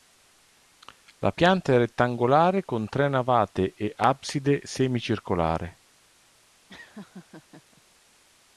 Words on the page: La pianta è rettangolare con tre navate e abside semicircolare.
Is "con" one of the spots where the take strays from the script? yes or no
no